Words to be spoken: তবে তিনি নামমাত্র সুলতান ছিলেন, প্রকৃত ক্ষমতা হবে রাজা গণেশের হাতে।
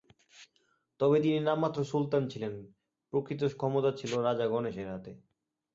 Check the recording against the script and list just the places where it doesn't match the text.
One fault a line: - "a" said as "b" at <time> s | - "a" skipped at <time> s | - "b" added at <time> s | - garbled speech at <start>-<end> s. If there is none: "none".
- "হবে" said as "ছিল" at 3.9 s